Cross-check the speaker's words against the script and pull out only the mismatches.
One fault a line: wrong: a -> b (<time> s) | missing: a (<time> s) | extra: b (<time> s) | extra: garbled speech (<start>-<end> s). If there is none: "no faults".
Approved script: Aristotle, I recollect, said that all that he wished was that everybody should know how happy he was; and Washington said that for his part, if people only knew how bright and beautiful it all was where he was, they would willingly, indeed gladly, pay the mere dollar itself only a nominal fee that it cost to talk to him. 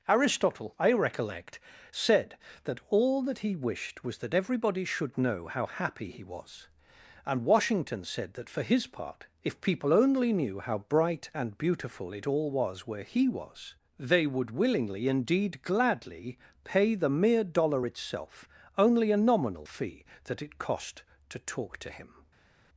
no faults